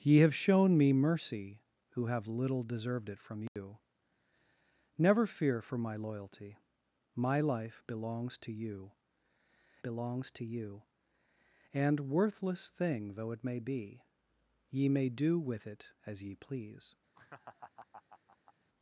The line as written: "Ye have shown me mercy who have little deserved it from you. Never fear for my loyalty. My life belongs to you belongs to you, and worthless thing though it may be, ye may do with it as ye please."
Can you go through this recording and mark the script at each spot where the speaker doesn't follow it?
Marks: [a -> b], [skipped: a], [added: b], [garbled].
"Ye have shown me mercy who have little deserved it from you. Never fear for my loyalty. My life belongs to you belongs to you, and worthless thing though it may be, ye may do with it as ye please."